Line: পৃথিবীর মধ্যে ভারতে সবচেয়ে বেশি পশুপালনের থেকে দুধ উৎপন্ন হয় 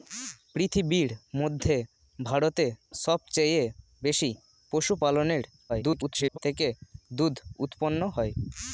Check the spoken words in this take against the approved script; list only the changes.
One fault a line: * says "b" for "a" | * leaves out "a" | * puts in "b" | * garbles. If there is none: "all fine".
* garbles